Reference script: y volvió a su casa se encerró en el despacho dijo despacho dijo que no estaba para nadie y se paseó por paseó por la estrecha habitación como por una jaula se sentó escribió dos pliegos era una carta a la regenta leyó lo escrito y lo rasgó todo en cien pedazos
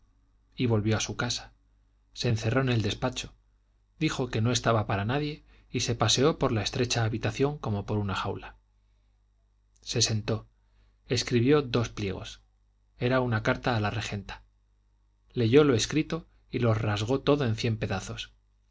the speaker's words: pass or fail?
fail